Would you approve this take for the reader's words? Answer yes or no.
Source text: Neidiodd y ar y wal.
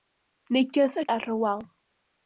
yes